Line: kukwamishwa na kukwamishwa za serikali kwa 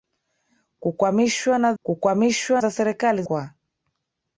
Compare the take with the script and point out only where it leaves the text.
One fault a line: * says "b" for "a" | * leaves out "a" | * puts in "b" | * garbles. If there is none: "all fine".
all fine